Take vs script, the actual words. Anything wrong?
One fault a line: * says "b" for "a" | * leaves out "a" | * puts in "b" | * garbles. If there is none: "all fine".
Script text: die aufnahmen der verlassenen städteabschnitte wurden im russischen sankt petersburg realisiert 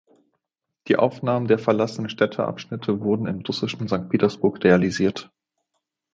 all fine